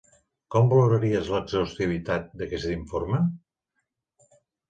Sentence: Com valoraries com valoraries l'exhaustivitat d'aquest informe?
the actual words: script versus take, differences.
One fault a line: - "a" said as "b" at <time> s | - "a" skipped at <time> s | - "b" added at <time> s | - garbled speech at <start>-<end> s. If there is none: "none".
- "com valoraries" skipped at 1.3 s